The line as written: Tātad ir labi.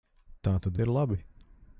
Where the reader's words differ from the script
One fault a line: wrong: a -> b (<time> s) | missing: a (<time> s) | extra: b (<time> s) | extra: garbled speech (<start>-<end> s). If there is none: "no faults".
no faults